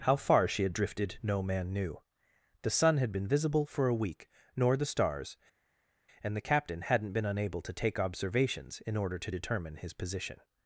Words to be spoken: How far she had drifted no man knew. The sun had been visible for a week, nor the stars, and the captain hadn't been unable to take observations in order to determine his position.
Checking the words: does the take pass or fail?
pass